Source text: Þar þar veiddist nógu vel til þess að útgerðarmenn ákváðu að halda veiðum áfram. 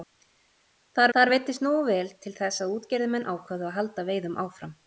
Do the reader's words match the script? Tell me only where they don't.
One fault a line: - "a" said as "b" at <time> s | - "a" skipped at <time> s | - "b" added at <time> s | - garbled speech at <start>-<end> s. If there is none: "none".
none